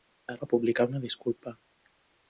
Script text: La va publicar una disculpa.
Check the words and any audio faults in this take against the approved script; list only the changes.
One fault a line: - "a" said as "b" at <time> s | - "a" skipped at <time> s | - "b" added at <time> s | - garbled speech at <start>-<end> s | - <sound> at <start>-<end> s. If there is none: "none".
none